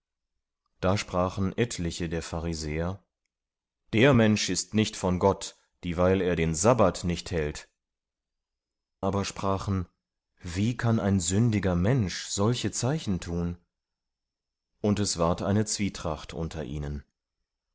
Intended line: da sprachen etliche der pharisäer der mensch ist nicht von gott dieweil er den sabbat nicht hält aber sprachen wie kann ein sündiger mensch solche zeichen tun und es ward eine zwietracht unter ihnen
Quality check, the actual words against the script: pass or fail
pass